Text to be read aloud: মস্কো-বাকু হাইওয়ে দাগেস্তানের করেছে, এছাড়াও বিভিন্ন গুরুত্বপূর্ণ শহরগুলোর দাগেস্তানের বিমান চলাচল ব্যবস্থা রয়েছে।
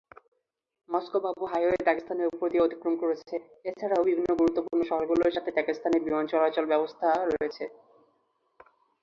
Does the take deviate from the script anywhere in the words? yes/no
yes